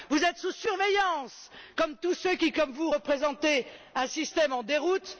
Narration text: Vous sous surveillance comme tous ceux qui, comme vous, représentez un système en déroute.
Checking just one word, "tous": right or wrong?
right